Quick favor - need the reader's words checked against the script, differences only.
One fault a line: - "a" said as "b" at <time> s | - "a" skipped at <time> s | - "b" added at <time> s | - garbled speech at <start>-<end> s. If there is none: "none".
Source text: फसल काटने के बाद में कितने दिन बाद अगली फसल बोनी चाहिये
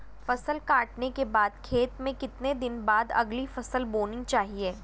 - "खेत" added at 1.6 s